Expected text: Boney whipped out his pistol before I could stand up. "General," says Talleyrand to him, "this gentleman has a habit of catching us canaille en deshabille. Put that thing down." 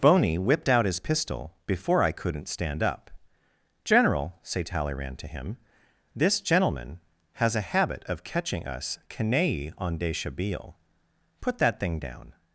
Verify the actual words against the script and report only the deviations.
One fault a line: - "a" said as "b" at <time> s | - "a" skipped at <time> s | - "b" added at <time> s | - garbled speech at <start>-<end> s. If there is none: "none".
- "could" said as "couldn't" at 2.1 s
- "says" said as "say" at 4.4 s